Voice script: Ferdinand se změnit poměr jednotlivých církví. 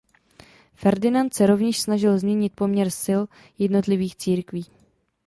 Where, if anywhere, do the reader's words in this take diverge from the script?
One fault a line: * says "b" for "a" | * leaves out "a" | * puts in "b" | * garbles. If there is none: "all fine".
* puts in "rovněž snažil"
* puts in "sil"